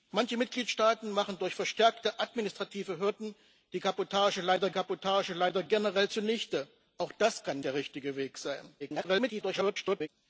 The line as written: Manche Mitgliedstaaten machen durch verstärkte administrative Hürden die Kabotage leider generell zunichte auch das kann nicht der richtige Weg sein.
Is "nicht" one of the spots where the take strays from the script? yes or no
yes